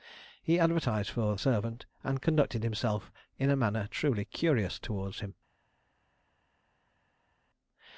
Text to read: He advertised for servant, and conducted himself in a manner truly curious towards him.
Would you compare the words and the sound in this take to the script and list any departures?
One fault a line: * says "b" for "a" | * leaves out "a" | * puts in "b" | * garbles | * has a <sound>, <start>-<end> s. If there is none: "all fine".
all fine